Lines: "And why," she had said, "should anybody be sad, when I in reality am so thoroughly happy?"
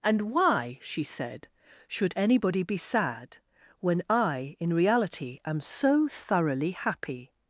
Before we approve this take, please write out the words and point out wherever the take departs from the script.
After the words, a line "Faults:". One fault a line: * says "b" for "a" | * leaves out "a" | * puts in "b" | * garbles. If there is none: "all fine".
"And why," she said, "should anybody be sad, when I in reality am so thoroughly happy?"
Faults:
* leaves out "had"